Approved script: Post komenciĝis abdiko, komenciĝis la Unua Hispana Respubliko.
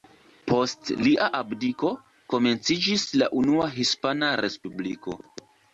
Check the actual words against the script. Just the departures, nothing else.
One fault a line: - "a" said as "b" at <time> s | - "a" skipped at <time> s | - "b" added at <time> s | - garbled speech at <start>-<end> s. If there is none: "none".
- "komenciĝis" said as "lia" at 1.1 s